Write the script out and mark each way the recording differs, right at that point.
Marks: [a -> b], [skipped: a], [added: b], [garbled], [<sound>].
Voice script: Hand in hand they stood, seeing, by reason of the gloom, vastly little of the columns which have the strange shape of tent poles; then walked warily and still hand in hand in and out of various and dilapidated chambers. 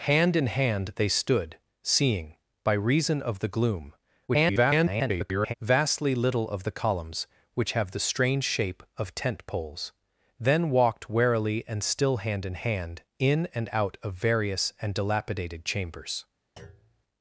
Hand in hand they stood, seeing, by reason of the gloom, [garbled] vastly little of the columns which have the strange shape of tent poles; then walked warily and still hand in hand in and out of various and dilapidated chambers. [thud]